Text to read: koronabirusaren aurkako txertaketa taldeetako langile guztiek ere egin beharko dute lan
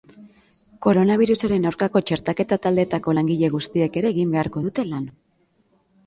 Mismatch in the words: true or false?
false